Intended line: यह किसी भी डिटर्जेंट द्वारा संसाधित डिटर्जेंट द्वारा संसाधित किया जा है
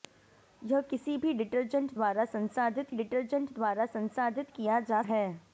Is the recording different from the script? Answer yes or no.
no